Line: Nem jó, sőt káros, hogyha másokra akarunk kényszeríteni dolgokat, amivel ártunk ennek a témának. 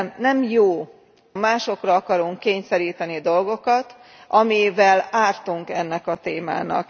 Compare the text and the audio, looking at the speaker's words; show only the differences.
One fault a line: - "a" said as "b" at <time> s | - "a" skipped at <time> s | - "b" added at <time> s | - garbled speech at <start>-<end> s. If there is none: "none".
- "sőt káros hogyha" skipped at 0.9 s